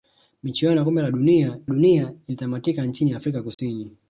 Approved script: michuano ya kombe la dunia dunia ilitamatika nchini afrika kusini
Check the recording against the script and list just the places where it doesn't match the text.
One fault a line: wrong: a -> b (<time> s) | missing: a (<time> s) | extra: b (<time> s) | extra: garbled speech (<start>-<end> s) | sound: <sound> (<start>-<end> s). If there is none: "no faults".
sound: dropout (3.5-3.6 s)